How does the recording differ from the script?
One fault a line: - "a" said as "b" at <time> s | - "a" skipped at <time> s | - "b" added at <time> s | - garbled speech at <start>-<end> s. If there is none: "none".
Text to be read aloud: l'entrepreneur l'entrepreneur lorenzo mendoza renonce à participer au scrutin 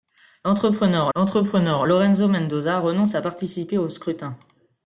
none